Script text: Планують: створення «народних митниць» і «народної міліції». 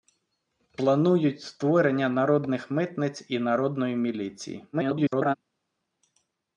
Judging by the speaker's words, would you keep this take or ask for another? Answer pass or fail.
fail